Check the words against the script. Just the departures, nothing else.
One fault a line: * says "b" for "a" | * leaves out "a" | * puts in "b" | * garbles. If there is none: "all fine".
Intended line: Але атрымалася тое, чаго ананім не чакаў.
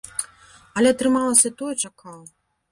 * leaves out "чаго ананім не"